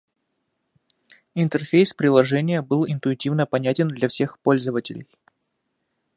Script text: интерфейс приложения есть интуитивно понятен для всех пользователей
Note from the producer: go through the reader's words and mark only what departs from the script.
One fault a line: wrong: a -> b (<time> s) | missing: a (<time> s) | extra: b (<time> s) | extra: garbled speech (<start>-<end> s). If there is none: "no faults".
wrong: есть -> был (2.6 s)